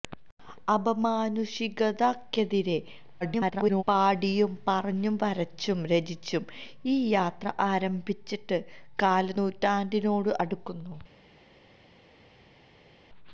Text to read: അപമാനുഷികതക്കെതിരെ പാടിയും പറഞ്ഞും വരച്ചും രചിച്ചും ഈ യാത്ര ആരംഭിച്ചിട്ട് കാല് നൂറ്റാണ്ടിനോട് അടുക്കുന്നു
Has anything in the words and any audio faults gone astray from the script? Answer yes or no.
yes